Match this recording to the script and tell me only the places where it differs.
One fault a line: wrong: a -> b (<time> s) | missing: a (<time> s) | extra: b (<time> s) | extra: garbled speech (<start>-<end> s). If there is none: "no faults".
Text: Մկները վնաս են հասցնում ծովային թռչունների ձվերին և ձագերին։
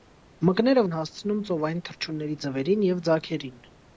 missing: վնաս (0.8 s)